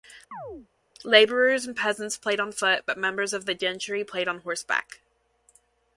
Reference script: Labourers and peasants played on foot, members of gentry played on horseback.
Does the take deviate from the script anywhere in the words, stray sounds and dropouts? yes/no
yes